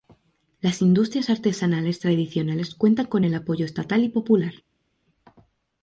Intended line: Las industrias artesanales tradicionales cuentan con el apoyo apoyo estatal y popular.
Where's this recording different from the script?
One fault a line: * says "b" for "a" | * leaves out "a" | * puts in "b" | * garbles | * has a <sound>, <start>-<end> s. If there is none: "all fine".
* leaves out "apoyo"